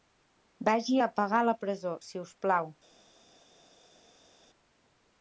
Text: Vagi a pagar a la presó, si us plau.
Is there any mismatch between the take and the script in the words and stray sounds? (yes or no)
no